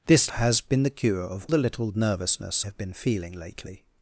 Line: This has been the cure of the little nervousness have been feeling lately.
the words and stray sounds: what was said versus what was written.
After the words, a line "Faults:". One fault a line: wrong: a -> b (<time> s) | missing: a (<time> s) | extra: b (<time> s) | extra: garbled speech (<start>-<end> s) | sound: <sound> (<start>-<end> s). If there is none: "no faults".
This has been the cure of the little nervousness have been feeling lately.
Faults:
no faults